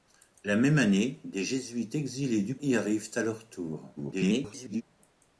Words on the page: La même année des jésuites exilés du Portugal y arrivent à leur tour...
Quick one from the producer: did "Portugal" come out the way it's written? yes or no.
no